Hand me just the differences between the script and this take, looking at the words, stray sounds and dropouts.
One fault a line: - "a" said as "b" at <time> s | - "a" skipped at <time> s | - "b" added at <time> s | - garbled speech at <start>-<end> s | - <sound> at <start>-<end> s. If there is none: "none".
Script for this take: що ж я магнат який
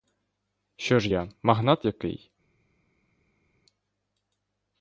none